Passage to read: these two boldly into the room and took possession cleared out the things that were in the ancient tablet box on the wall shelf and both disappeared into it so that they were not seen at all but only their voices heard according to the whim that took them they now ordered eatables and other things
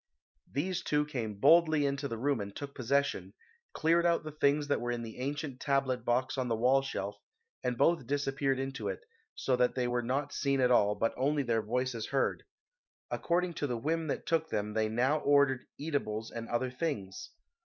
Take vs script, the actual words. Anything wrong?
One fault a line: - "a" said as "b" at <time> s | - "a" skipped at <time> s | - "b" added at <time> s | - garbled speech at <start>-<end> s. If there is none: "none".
- "came" added at 1.1 s